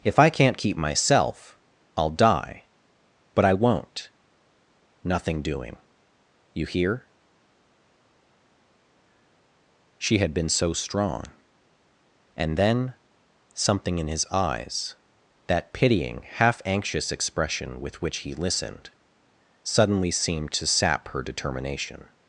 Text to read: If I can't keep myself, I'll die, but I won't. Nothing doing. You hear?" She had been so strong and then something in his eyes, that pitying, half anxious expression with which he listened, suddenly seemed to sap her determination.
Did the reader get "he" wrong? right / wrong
right